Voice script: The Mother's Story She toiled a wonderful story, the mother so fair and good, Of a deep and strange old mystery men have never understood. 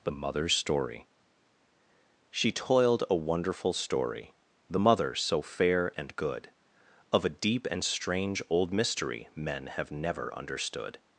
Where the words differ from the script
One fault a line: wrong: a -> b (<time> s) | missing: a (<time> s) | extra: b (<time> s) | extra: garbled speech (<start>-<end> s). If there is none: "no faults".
no faults